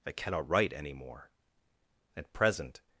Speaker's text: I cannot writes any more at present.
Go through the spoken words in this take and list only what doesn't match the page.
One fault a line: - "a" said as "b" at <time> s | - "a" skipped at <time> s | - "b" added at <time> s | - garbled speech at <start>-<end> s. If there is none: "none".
- "writes" said as "write" at 0.5 s